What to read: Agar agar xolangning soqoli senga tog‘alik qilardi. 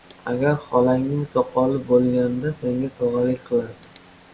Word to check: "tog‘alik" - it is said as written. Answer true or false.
true